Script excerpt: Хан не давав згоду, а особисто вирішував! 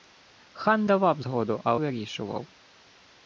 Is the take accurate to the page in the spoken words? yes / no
no